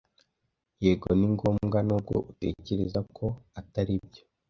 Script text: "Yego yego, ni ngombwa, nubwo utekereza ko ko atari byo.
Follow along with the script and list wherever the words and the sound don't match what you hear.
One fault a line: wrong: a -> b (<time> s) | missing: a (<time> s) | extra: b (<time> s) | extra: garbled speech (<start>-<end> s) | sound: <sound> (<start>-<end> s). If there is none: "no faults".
missing: yego (1.1 s)
missing: ko (3.3 s)